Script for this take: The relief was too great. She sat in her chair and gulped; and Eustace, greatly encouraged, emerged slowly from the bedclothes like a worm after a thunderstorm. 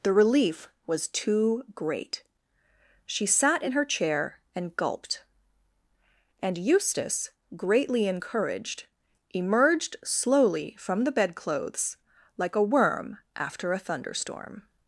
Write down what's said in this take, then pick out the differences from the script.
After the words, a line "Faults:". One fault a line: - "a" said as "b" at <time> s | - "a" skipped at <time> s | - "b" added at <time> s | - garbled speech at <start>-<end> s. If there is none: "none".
The relief was too great. She sat in her chair and gulped; and Eustace, greatly encouraged, emerged slowly from the bedclothes like a worm after a thunderstorm.
Faults:
none